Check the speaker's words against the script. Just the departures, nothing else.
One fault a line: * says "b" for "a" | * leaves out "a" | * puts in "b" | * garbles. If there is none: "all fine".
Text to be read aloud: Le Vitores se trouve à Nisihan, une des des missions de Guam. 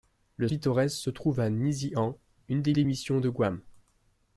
all fine